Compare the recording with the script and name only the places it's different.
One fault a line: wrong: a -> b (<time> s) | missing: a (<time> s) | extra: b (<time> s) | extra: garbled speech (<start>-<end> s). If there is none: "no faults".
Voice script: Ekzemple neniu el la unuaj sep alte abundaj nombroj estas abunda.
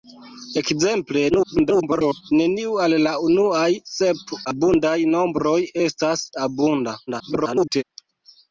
extra: garbled speech (1.3-2.3 s)
missing: alte (4.4 s)
extra: garbled speech (7.1-7.8 s)